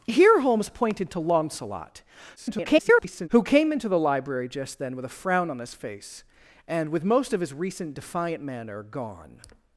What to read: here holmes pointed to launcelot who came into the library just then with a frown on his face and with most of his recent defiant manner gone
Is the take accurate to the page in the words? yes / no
no